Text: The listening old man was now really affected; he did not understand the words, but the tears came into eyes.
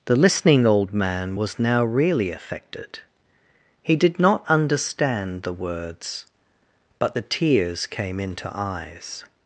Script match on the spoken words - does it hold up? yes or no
yes